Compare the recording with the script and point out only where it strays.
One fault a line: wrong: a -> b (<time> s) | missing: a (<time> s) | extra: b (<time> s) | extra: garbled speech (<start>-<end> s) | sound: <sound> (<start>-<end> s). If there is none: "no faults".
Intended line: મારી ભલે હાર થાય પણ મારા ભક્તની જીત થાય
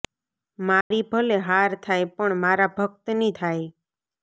sound: dropout (0.8-0.9 s)
missing: જીત (3.3 s)